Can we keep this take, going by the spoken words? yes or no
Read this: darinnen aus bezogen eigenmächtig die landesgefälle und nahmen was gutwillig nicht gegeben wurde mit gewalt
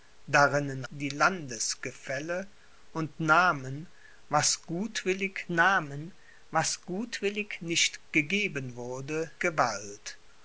no